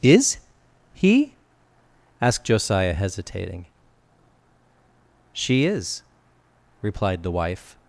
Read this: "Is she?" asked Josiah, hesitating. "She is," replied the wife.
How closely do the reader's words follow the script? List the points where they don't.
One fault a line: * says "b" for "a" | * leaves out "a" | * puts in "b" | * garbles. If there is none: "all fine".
* says "he" for "she"